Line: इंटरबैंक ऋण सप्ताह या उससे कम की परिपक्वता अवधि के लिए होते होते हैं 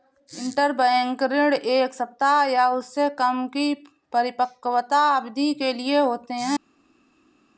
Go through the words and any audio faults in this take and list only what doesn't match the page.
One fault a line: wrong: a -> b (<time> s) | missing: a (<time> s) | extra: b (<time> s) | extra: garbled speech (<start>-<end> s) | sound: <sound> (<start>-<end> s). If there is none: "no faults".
extra: एक (1.5 s)
missing: होते (6.3 s)